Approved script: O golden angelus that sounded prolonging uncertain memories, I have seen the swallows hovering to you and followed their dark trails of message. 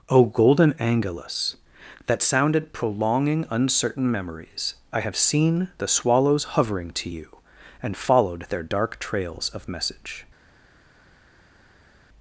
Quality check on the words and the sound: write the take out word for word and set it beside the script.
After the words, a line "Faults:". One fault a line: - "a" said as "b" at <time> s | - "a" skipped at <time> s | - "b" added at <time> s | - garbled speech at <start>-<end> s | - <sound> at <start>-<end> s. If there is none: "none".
O golden angelus that sounded prolonging uncertain memories, I have seen the swallows hovering to you and followed their dark trails of message.
Faults:
none